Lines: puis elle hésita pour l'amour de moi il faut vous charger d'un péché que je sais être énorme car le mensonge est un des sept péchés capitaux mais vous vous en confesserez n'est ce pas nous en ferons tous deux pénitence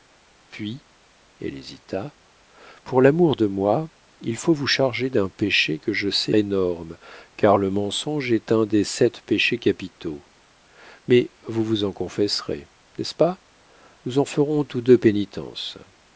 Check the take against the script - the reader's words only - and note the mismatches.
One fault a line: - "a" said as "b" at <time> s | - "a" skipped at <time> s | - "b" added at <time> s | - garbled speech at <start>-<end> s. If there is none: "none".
- "être" skipped at 6.3 s